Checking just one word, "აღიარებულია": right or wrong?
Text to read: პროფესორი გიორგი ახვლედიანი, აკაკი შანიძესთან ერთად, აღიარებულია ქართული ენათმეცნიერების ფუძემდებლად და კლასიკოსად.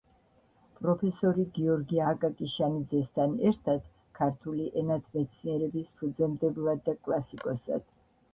wrong